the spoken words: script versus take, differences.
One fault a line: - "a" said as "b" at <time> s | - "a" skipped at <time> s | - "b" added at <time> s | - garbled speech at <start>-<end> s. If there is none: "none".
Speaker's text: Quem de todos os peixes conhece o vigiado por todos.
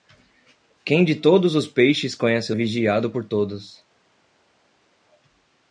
none